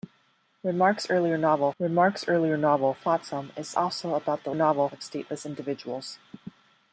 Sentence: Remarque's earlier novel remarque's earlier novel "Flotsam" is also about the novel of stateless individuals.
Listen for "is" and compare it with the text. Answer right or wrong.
right